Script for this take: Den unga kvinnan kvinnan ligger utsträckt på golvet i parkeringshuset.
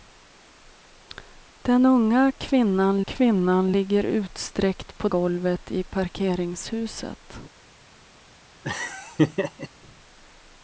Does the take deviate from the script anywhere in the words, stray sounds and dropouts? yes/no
yes